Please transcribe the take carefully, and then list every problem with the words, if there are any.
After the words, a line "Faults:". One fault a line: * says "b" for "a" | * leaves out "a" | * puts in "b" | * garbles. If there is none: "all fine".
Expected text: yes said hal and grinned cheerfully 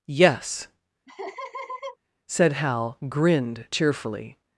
yes said hal grinned cheerfully
Faults:
* leaves out "and"